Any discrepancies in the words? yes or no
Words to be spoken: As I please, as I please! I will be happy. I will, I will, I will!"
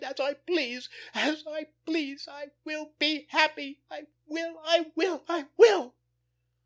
no